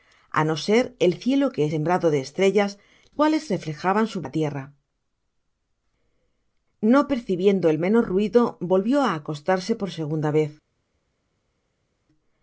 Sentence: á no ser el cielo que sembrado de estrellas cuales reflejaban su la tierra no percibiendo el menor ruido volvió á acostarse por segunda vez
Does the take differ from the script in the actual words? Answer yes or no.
no